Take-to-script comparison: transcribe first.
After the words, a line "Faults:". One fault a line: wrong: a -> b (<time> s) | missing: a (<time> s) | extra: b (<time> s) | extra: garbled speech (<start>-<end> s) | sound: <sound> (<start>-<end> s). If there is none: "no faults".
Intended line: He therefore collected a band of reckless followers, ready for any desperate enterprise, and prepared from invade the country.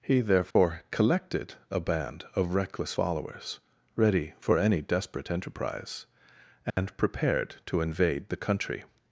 He therefore collected a band of reckless followers, ready for any desperate enterprise, and prepared to invade the country.
Faults:
sound: dropout (0.5-0.6 s)
sound: dropout (6.7-6.8 s)
wrong: from -> to (7.7 s)